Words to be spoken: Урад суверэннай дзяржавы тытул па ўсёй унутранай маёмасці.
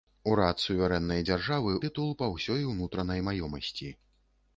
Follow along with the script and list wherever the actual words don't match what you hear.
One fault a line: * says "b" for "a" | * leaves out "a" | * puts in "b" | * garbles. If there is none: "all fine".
all fine